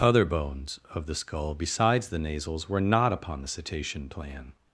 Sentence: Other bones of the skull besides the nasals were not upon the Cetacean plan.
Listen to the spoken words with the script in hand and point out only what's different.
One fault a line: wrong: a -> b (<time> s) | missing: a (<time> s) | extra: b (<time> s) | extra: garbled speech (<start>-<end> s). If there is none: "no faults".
no faults